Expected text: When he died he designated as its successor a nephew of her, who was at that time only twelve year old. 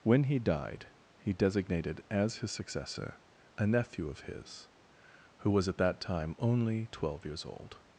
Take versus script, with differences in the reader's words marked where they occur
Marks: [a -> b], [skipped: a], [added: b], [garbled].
When he died he designated as [its -> his] successor a nephew of [her, -> his] who was at that time only twelve [year -> years] old.